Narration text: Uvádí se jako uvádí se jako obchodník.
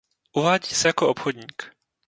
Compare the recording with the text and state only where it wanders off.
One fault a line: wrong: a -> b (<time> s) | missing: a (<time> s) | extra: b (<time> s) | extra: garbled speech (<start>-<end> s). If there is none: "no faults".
missing: uvádí se jako (1.1 s)